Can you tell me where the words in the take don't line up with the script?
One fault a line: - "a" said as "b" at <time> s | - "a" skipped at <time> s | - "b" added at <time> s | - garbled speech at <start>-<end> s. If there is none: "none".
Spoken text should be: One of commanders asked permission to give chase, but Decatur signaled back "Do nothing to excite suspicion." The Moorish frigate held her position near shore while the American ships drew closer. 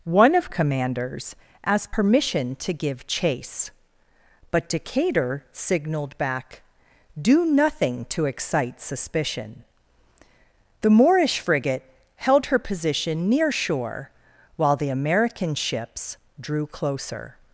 none